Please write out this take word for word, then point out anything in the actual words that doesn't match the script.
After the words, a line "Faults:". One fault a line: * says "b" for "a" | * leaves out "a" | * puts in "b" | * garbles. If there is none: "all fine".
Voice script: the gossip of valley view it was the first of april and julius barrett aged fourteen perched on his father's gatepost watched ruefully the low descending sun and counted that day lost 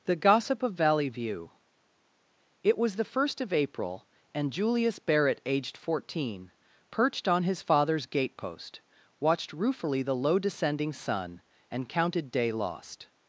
the gossip of valley view it was the first of april and julius barrett aged fourteen perched on his father's gatepost watched ruefully the low descending sun and counted day lost
Faults:
* leaves out "that"